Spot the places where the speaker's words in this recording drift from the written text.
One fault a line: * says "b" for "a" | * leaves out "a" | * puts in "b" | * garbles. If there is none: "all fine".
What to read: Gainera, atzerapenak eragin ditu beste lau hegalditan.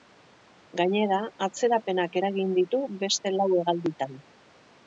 all fine